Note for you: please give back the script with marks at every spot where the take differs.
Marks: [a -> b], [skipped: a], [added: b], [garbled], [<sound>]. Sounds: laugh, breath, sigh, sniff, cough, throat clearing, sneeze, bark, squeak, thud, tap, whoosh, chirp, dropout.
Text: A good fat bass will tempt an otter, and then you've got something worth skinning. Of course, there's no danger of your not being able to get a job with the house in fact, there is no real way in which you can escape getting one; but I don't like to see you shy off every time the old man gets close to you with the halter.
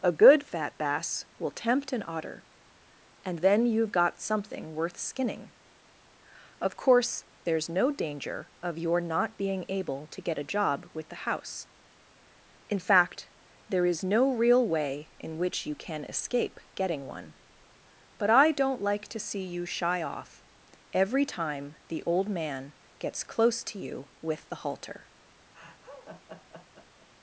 A good fat bass will tempt an otter, and then you've got something worth skinning. Of course, there's no danger of your not being able to get a job with the house in fact, there is no real way in which you can escape getting one; but I don't like to see you shy off every time the old man gets close to you with the halter. [laugh]